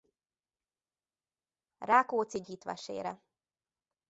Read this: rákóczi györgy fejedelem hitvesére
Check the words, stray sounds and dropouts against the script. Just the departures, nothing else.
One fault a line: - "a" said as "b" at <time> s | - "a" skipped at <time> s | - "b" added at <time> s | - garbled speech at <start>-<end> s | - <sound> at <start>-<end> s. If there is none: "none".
- "györgy fejedelem" skipped at 2.4 s